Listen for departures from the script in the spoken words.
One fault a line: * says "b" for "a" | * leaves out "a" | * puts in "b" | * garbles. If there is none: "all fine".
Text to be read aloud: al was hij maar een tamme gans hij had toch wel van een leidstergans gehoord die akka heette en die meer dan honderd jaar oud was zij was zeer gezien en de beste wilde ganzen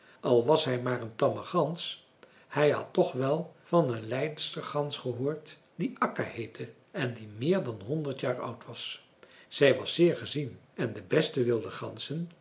all fine